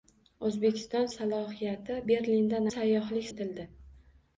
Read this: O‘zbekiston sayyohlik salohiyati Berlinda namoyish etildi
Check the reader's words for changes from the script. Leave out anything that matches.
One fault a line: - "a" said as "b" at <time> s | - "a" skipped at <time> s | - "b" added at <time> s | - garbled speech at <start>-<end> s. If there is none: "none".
- "sayyohlik" skipped at 1.1 s
- "namoyish" said as "sayyohlik" at 2.7 s